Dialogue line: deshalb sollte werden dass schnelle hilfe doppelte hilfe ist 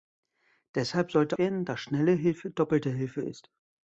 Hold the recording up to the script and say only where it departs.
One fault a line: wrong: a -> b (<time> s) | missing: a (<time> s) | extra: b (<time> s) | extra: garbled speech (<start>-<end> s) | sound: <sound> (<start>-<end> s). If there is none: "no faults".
no faults